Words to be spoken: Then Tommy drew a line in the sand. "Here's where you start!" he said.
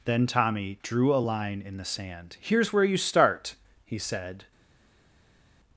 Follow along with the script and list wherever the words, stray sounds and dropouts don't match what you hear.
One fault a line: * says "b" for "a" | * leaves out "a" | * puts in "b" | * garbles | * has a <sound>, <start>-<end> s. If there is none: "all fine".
all fine